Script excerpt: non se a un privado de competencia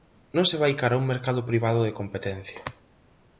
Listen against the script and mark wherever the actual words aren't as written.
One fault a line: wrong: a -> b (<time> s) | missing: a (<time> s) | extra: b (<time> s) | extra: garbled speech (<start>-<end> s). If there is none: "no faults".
extra: vai cara (0.6 s)
extra: mercado (1.1 s)